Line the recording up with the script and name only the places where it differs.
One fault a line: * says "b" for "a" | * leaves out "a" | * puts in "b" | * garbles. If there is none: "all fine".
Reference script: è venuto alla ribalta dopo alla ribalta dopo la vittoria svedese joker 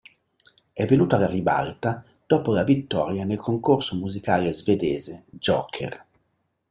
* says "la vittoria nel concorso musicale" for "alla ribalta dopo la vittoria"